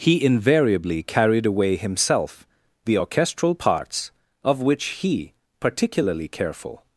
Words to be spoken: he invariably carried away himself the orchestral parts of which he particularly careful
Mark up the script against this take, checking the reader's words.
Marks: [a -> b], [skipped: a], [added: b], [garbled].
he invariably carried away himself the orchestral parts of which he particularly careful